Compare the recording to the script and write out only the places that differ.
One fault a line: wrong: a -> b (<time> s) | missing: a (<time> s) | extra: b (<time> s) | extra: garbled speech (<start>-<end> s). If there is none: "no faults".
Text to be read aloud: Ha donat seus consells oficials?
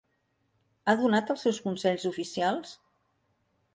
extra: els (1.3 s)